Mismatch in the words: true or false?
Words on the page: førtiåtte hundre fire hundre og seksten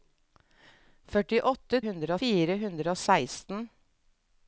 false